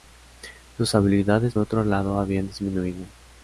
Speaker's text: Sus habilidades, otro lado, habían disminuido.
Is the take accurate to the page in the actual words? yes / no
yes